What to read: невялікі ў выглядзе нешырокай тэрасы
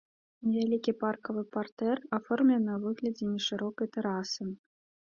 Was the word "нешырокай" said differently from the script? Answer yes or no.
no